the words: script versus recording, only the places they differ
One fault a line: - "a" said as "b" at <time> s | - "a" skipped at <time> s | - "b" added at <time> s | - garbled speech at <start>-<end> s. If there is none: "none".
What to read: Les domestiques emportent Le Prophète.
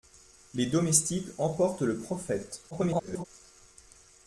- garbled speech at 2.7-3.2 s